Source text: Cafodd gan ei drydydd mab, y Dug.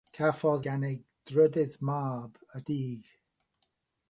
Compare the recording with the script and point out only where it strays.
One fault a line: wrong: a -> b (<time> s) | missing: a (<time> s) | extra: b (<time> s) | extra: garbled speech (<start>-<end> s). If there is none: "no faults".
no faults